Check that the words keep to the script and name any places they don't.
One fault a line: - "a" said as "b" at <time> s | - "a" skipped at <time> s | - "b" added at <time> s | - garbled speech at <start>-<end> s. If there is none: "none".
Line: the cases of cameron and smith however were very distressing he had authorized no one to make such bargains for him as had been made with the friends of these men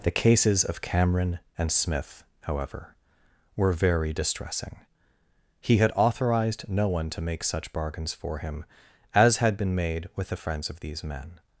none